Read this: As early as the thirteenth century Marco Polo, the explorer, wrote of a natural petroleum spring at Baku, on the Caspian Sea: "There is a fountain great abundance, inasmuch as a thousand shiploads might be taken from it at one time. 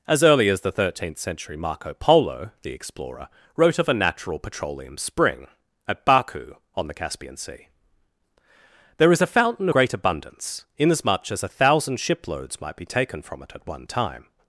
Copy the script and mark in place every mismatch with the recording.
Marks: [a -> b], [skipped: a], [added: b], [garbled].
As early as the thirteenth century Marco Polo, the explorer, wrote of a natural petroleum spring at Baku, on the Caspian Sea: "There is a fountain great abundance, inasmuch as a thousand shiploads might be taken from it at one time.